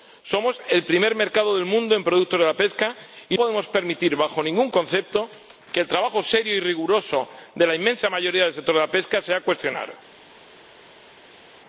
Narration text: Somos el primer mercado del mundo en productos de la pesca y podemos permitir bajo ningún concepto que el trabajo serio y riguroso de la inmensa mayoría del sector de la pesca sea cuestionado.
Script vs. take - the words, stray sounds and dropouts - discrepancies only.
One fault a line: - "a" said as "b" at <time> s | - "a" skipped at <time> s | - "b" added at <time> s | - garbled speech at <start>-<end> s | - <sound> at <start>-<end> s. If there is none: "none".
none